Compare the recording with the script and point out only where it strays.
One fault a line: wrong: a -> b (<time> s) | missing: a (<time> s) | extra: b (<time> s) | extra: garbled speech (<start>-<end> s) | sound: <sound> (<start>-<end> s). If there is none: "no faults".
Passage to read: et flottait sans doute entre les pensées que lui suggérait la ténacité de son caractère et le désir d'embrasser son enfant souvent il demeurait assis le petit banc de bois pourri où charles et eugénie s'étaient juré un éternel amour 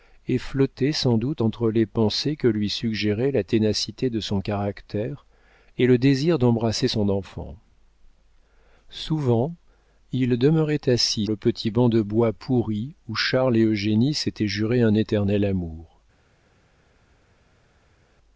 no faults